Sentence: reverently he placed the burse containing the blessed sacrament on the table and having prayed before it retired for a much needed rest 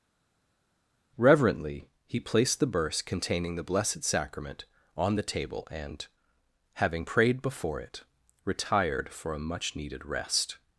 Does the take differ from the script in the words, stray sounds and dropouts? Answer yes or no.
no